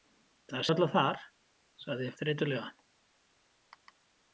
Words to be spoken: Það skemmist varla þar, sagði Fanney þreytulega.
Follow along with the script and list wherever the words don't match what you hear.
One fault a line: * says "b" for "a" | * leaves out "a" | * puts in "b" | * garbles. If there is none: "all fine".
* leaves out "skemmist"
* leaves out "Fanney"